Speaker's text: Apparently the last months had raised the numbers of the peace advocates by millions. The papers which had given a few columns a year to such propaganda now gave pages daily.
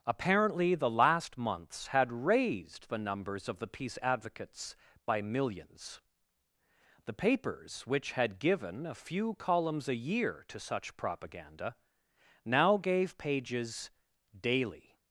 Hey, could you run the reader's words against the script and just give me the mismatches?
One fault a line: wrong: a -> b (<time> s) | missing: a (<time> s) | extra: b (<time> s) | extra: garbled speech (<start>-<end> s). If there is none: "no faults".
no faults